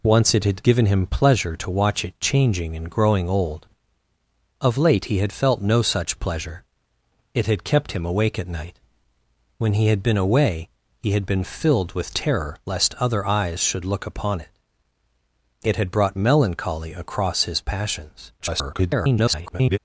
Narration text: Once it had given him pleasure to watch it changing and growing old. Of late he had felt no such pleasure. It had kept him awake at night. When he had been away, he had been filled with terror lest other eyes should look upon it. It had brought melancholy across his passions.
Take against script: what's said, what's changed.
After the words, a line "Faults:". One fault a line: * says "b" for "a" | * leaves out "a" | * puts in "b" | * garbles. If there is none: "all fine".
Once it had given him pleasure to watch it changing and growing old. Of late he had felt no such pleasure. It had kept him awake at night. When he had been away, he had been filled with terror lest other eyes should look upon it. It had brought melancholy across his passions. [garbled]
Faults:
* garbles